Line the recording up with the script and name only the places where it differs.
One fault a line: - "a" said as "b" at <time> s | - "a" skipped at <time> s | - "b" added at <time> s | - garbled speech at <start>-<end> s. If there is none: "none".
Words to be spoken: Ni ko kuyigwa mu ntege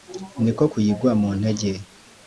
none